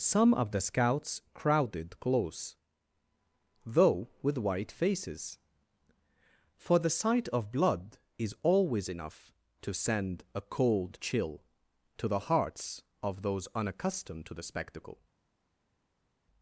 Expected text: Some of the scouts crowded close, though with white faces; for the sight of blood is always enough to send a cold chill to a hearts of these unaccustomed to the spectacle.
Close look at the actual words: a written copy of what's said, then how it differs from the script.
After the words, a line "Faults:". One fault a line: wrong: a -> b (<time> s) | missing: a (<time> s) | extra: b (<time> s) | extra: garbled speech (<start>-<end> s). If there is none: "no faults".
Some of the scouts crowded close, though with white faces; for the sight of blood is always enough to send a cold chill to the hearts of those unaccustomed to the spectacle.
Faults:
wrong: a -> the (12.1 s)
wrong: these -> those (13.2 s)